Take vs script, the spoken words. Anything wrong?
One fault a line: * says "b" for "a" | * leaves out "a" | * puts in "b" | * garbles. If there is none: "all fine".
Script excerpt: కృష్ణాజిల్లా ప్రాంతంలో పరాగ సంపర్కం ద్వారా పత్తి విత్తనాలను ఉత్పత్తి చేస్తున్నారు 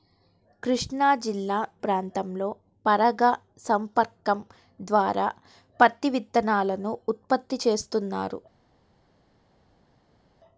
all fine